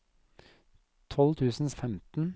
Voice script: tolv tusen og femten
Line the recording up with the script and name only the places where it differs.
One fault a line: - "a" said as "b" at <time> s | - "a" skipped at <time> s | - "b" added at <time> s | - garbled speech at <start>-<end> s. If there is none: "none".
none